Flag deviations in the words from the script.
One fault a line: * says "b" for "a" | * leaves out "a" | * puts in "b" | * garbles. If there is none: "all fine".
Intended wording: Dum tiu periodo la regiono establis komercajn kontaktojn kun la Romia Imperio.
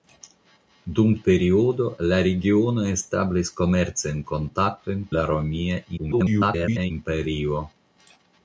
* leaves out "tiu"
* leaves out "kun"
* garbles